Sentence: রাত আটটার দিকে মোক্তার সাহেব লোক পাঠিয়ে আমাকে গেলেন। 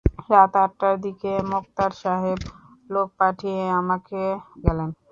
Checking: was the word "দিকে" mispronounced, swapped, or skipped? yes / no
no